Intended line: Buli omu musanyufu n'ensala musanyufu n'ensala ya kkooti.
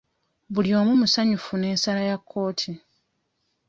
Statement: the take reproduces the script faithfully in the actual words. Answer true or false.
false